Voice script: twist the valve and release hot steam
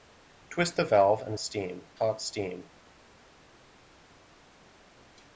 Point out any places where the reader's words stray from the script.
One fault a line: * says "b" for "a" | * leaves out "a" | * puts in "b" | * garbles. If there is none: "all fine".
* says "steam" for "release"